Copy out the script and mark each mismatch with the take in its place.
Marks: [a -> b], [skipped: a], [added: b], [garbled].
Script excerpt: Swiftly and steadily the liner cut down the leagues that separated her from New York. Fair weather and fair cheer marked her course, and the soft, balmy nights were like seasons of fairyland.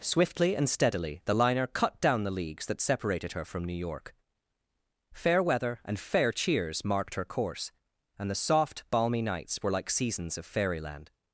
Swiftly and steadily the liner cut down the leagues that separated her from New York. Fair weather and fair [cheer -> cheers] marked her course, and the soft, balmy nights were like seasons of fairyland.